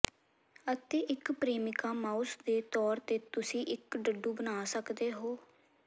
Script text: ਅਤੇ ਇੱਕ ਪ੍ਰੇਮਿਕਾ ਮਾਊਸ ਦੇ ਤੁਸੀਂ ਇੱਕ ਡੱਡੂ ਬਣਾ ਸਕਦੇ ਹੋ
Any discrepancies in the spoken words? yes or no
yes